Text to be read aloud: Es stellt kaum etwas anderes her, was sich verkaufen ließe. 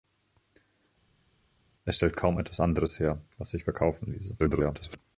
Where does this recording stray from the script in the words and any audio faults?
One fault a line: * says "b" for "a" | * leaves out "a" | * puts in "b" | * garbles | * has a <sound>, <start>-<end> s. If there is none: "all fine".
* garbles